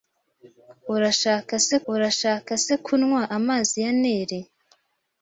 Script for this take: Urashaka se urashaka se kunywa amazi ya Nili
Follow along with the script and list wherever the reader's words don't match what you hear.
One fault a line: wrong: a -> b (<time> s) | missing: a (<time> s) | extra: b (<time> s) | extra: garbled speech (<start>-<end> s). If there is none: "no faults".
no faults